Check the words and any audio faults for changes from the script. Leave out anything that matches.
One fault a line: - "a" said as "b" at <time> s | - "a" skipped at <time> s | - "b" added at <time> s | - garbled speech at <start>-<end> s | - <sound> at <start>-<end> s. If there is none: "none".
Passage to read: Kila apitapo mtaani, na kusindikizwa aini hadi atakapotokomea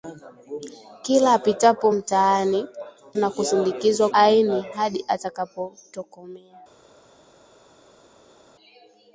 none